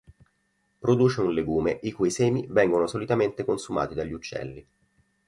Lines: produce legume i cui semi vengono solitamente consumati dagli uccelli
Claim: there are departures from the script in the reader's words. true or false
true